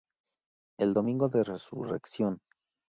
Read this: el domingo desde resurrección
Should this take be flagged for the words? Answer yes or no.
yes